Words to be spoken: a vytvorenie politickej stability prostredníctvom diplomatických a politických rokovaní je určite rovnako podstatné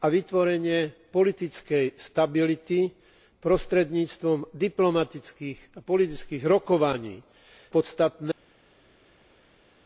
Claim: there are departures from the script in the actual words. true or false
true